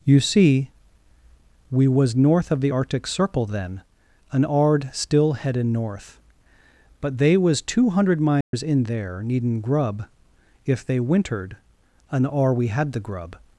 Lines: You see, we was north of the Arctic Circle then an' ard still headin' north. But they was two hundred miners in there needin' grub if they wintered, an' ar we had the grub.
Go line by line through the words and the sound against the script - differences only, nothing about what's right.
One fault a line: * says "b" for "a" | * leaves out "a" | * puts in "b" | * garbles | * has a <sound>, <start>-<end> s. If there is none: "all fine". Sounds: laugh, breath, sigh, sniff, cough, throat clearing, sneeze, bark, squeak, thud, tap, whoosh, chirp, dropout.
* has a dropout, 8.4-8.5 s